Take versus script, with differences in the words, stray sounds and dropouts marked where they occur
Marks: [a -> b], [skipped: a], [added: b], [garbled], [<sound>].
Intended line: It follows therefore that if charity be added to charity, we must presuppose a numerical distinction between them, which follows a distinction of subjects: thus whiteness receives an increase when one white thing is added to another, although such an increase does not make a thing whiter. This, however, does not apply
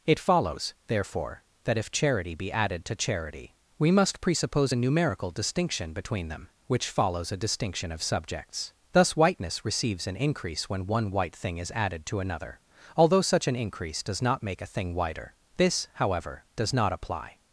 It follows therefore that if charity be added to charity, we must presuppose a numerical distinction between them, which follows a distinction of subjects: thus whiteness receives an increase when one white thing is added to another, although such an increase does not make a thing whiter. This, however, does not apply